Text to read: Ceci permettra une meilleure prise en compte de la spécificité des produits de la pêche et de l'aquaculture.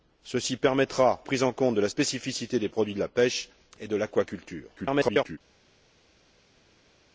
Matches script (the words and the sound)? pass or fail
fail